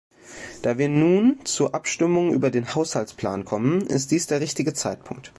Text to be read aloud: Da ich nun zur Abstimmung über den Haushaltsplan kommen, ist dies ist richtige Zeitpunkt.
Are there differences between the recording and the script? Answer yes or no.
yes